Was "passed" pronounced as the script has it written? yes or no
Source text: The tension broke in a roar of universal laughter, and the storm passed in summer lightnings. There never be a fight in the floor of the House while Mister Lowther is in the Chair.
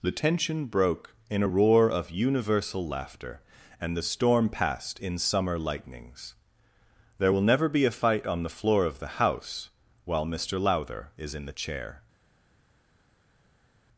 yes